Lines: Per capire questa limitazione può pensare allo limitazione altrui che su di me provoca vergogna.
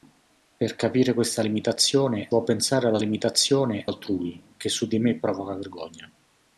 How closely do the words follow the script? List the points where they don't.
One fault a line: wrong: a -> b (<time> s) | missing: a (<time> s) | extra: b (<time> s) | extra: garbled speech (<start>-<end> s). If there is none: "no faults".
no faults